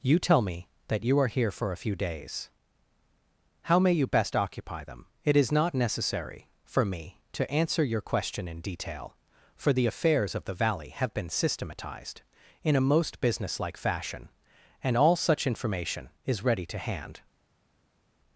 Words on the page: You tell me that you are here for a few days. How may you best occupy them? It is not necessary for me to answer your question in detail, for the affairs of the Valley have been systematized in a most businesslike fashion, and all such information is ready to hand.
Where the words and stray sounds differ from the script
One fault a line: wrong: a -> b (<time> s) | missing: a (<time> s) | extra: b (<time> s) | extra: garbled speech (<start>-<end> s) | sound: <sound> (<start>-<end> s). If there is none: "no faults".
no faults